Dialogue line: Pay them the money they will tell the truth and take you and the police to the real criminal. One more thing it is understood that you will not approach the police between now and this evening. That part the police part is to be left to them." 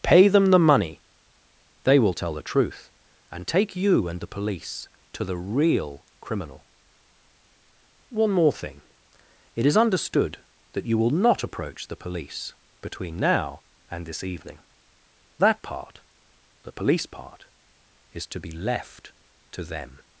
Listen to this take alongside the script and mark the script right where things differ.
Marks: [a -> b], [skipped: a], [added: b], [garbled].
Pay them the money they will tell the truth and take you and the police to the real criminal. One more thing it is understood that you will not approach the police between now and this evening. That part the police part is to be left to them."